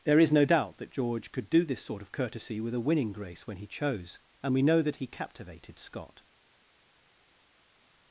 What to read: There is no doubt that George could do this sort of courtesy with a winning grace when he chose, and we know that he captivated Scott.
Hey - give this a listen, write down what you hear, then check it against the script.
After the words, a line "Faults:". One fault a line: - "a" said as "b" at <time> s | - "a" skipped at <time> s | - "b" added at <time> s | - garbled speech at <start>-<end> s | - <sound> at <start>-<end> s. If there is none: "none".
There is no doubt that George could do this sort of courtesy with a winning grace when he chose, and we know that he captivated Scott.
Faults:
none